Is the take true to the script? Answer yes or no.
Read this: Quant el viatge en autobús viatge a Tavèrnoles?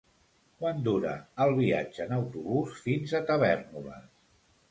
no